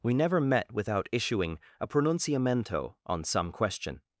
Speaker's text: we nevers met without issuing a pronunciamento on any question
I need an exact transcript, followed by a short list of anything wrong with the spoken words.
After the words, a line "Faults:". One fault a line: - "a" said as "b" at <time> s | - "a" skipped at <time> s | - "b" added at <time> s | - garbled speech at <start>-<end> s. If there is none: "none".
we never met without issuing a pronunciamento on some question
Faults:
- "nevers" said as "never" at 0.1 s
- "any" said as "some" at 3.2 s